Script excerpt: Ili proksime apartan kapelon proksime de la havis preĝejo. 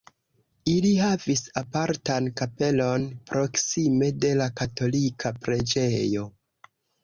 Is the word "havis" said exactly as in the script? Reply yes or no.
no